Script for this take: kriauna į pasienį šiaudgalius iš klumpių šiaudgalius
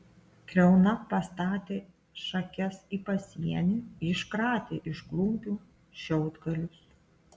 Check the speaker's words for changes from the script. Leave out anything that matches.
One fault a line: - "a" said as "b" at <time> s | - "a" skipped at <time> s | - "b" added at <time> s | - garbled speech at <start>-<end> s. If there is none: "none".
- "pastatė šakes" added at 1.1 s
- "šiaudgalius" said as "iškratė" at 4.1 s